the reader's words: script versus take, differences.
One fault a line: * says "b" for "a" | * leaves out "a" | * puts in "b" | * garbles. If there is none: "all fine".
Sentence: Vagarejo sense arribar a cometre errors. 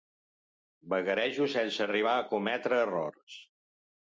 all fine